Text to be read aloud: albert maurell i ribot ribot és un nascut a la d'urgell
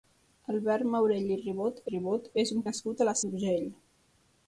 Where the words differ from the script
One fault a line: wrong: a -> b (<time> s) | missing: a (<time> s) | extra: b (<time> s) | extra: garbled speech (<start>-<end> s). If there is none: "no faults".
no faults